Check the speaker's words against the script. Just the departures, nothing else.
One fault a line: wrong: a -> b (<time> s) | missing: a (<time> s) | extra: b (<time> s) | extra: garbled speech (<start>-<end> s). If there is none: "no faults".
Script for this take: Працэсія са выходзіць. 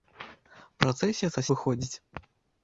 no faults